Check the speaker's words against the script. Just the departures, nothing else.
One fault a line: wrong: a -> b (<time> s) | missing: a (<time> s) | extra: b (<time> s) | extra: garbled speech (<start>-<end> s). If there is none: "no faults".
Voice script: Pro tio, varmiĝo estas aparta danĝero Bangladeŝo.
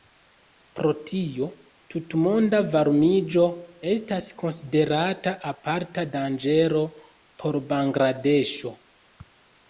extra: tutmonda (1.9 s)
extra: konsiderata (4.4 s)
extra: por (7.4 s)